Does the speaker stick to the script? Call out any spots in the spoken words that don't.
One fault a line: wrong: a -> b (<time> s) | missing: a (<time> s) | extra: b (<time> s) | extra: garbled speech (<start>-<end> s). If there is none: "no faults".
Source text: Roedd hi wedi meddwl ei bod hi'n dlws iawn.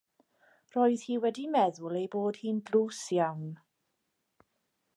no faults